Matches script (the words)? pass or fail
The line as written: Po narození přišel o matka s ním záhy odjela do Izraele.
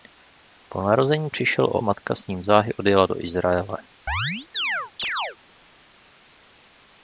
pass